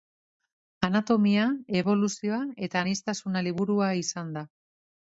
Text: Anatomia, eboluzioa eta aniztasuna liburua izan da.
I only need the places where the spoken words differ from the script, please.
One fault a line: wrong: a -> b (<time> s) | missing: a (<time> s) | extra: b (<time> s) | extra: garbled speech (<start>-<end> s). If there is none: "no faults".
no faults